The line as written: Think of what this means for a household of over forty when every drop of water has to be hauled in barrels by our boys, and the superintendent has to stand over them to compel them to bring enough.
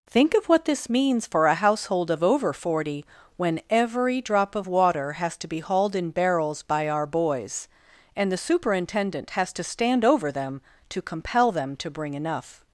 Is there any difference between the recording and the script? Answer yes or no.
no